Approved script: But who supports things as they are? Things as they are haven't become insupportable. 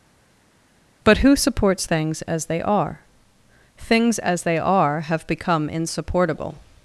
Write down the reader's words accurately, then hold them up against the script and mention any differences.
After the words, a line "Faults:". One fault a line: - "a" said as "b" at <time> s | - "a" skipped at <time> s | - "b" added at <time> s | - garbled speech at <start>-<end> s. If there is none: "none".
But who supports things as they are? Things as they are have become insupportable.
Faults:
- "haven't" said as "have" at 5.0 s